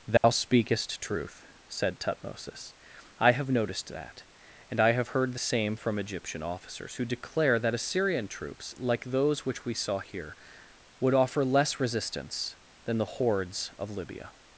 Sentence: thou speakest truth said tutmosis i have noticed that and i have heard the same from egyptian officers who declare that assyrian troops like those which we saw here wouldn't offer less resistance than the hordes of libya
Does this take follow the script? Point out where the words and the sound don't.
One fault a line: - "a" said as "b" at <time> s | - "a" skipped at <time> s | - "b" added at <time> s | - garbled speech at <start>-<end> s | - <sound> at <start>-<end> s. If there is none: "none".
- dropout at 0.2-0.2 s
- "wouldn't" said as "would" at 11.0 s